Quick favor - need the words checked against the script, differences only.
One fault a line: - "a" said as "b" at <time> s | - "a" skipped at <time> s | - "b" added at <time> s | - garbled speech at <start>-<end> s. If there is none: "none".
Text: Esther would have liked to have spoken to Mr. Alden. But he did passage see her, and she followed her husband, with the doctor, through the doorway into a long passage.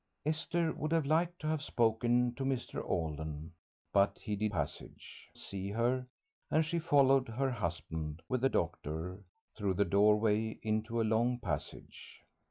none